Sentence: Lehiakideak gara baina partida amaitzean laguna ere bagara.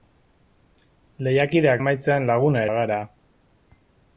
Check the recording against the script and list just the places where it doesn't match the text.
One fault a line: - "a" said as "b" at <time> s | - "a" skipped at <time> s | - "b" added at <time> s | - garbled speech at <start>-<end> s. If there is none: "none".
- "gara baina partida" skipped at 1.8 s
- "ere" skipped at 2.6 s